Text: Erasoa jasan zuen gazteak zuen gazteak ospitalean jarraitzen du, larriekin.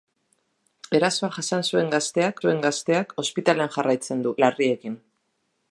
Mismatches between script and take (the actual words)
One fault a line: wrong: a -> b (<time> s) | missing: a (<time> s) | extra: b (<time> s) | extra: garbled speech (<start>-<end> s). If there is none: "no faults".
no faults